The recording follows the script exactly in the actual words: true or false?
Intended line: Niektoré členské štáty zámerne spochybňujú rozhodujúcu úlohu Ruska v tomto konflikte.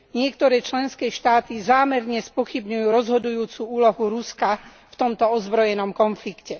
false